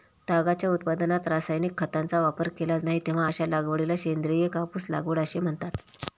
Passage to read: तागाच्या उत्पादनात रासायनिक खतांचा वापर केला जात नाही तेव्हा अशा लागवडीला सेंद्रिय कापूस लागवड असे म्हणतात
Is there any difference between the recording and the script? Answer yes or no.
yes